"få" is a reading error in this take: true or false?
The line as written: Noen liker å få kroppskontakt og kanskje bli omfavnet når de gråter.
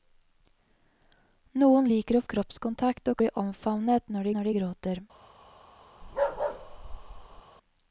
true